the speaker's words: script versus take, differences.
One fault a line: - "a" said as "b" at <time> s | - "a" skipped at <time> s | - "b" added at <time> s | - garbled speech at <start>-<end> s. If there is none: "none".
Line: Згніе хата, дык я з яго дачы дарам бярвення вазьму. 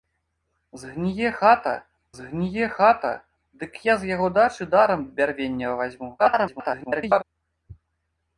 - "згніе хата" added at 2.2 s
- garbled speech at 6.2-7.2 s